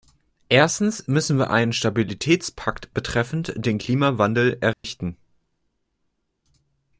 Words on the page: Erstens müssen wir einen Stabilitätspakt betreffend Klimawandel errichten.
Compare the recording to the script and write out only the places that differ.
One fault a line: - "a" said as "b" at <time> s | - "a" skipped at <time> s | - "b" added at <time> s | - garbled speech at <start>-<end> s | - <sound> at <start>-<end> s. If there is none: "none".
- "den" added at 3.5 s
- dropout at 4.7-4.8 s